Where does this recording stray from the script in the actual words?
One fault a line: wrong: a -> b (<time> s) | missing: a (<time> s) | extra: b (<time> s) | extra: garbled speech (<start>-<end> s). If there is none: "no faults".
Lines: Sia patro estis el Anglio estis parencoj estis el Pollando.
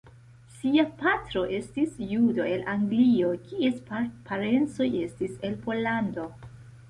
extra: judo (2.1 s)
wrong: estis -> kies (3.5 s)